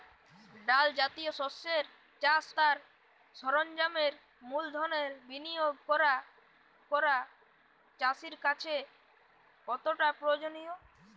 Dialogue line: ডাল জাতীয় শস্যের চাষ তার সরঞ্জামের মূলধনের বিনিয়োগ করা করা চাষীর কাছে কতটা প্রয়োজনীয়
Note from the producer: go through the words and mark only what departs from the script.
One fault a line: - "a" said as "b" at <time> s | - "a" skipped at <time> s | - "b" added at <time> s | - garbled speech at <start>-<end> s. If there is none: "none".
none